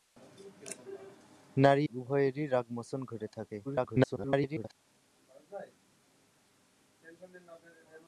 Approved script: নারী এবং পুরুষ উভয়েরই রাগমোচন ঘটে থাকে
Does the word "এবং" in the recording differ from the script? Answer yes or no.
yes